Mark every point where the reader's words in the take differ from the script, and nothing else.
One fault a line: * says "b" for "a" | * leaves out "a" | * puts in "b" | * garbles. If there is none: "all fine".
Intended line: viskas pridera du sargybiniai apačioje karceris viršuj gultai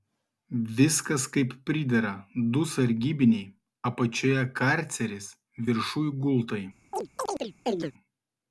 * puts in "kaip"